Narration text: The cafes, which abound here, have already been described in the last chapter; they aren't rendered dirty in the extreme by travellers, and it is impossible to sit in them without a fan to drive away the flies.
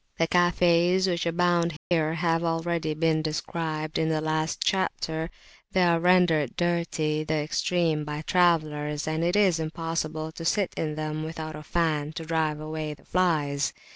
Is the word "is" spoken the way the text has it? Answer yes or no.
yes